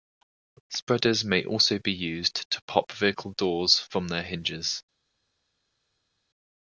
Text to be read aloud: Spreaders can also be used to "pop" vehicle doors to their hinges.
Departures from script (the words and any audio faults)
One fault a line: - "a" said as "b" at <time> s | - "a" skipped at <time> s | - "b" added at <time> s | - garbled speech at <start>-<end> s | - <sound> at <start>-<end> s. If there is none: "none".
- "can" said as "may" at 1.2 s
- "to" said as "from" at 3.9 s